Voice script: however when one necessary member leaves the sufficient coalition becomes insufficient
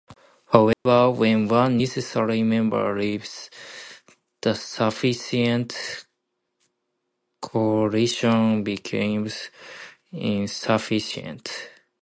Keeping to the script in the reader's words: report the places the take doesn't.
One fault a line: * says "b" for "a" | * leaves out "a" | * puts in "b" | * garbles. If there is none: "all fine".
all fine